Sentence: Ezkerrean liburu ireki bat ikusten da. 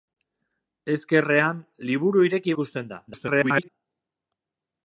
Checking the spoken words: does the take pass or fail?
fail